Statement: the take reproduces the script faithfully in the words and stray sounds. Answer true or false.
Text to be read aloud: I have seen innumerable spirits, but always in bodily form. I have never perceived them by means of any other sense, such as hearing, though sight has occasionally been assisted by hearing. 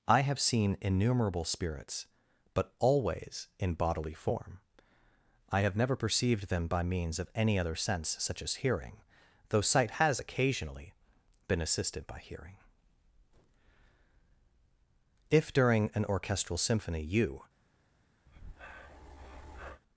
false